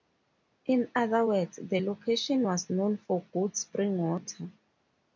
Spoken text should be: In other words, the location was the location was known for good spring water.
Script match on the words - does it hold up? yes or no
no